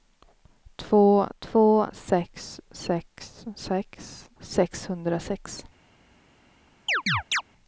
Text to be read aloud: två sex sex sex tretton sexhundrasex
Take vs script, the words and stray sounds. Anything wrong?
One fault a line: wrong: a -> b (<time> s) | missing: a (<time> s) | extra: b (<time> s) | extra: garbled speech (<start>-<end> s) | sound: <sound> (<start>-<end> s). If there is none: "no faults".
extra: två (1.4 s)
missing: tretton (4.3 s)
sound: chirp (6.9-7.4 s)